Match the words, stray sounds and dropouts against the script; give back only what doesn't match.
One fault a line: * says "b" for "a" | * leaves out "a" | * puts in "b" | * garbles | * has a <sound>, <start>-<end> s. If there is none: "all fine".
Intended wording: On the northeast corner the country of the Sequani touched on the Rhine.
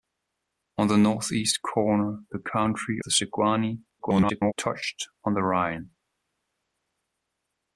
* leaves out "of"
* garbles